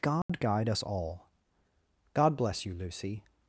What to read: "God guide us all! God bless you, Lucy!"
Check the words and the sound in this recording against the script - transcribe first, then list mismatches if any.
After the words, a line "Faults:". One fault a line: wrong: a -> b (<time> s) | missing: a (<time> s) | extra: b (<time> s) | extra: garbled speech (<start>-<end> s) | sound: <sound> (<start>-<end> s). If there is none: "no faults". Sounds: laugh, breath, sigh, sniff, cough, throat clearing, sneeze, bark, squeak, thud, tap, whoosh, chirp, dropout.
"God guide us all! God bless you, Lucy!"
Faults:
sound: dropout (0.2-0.3 s)